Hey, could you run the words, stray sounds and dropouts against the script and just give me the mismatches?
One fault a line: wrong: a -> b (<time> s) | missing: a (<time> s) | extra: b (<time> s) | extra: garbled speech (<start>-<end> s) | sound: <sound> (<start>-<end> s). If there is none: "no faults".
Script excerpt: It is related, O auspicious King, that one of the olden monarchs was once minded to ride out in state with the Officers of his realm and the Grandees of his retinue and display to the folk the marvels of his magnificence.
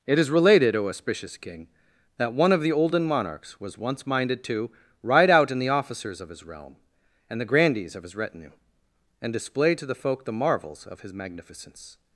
missing: state with (5.6 s)